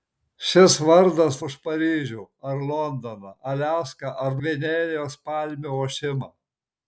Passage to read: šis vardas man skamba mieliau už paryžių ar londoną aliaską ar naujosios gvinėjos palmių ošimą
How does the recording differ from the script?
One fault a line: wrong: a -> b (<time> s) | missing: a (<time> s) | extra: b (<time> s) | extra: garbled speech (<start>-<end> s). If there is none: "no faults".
missing: man skamba mieliau (1.4 s)
missing: naujosios (4.4 s)